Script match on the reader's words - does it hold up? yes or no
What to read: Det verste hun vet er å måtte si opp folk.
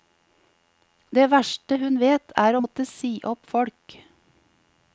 yes